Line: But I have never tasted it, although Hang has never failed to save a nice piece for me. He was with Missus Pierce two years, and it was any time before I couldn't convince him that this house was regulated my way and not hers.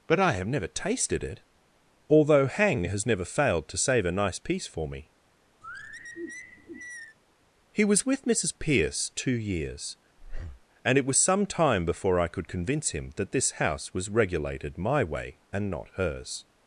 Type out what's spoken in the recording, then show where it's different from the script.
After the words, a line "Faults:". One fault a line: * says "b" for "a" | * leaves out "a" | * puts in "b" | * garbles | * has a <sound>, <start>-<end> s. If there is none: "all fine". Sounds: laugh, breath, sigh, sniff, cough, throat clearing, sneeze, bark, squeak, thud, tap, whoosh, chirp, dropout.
But I have never tasted it, although Hang has never failed to save a nice piece for me. He was with Missus Pierce two years, and it was some time before I could convince him that this house was regulated my way and not hers.
Faults:
* has a sigh, 5.6-7.2 s
* has a breath, 10.2-10.7 s
* says "some" for "any"
* says "could" for "couldn't"